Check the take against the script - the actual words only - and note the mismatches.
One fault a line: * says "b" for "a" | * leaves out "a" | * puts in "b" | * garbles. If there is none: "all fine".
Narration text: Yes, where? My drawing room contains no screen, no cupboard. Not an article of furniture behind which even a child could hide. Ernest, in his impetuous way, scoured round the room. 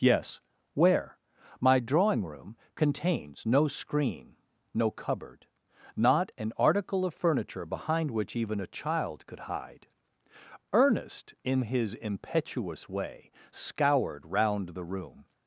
all fine